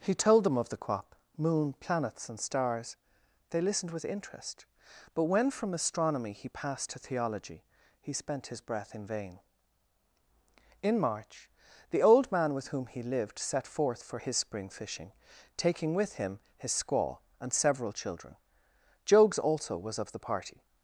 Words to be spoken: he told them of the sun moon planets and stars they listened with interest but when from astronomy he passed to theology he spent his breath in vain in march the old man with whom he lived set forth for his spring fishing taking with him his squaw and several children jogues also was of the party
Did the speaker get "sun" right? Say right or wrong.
wrong